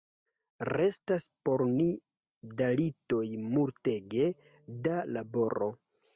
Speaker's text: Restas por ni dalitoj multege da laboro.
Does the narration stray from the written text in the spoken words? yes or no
no